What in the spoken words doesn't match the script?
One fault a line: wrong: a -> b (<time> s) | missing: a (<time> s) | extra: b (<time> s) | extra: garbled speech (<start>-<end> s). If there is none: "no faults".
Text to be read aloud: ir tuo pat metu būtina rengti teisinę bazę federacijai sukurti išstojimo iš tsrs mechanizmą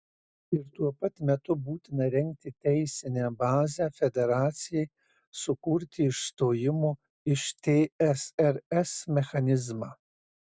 no faults